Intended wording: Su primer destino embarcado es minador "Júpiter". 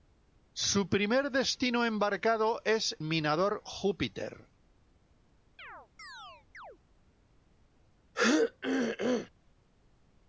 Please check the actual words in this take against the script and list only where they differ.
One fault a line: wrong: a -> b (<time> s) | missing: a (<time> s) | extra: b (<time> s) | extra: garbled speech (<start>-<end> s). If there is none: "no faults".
no faults